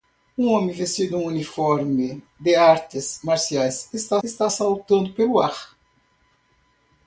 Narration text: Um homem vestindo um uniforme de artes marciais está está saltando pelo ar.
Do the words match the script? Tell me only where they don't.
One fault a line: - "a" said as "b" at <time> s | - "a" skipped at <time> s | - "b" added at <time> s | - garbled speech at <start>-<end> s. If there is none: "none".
none